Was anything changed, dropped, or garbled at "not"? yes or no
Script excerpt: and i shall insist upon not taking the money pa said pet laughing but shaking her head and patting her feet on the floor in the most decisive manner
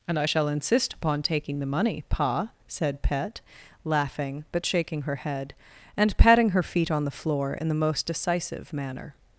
yes